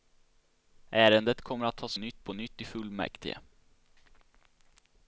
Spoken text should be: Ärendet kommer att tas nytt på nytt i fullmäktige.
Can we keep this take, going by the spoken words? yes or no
yes